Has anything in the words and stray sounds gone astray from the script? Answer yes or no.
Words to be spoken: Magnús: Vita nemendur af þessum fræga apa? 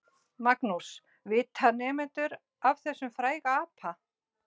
no